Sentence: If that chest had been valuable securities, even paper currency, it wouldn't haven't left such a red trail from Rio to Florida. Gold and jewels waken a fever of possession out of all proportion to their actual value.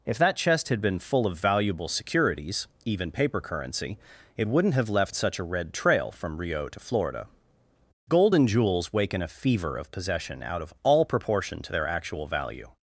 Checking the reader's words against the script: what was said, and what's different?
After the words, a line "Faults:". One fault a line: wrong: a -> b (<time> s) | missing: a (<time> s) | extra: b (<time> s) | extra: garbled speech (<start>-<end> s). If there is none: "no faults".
If that chest had been full of valuable securities, even paper currency, it wouldn't have left such a red trail from Rio to Florida. Gold and jewels waken a fever of possession out of all proportion to their actual value.
Faults:
extra: full of (1.0 s)
wrong: haven't -> have (4.7 s)